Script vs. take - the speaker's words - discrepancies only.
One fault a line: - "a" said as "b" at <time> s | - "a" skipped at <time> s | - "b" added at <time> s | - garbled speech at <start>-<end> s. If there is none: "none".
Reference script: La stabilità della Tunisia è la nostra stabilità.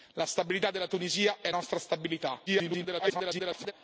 - "la" skipped at 1.5 s
- garbled speech at 2.5-3.7 s